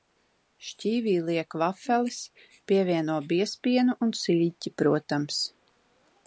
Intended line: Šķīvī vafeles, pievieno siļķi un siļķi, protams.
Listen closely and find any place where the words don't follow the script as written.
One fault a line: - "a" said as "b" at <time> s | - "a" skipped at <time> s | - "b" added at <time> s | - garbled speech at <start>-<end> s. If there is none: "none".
- "liek" added at 1.3 s
- "siļķi" said as "biezpienu" at 3.3 s